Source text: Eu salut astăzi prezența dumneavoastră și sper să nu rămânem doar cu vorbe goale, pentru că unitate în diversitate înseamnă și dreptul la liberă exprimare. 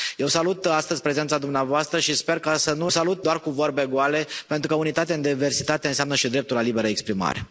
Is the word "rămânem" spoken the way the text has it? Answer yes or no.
no